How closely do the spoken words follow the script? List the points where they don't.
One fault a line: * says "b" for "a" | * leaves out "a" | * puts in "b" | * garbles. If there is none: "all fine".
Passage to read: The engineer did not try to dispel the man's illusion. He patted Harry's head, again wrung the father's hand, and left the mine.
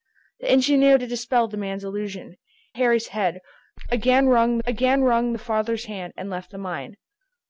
* leaves out "did not try"
* says "Harry's head again wrung" for "He patted Harry's head"